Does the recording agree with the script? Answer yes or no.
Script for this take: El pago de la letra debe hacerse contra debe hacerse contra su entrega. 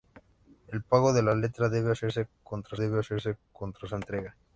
yes